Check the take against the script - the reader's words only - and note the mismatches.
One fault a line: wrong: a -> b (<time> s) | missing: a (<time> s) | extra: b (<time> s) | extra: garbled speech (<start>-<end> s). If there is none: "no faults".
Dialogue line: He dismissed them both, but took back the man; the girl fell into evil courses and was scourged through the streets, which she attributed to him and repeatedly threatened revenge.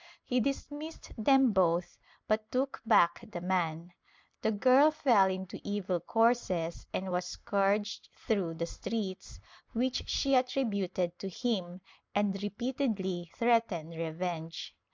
no faults